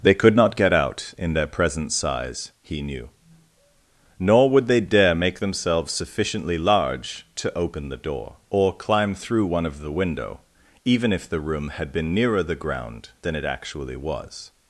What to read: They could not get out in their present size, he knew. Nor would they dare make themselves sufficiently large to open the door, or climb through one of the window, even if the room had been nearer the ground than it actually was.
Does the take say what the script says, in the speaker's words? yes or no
yes